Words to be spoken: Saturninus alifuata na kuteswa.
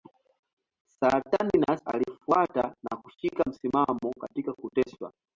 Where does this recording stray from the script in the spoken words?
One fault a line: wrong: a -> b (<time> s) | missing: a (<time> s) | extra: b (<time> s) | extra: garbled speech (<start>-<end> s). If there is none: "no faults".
extra: kushika msimamo katika (3.0 s)